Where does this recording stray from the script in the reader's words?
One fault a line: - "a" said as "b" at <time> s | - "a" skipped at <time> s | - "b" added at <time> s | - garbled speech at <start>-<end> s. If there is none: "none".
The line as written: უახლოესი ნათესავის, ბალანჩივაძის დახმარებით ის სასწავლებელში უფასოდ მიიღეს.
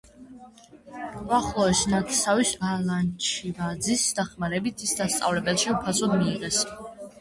none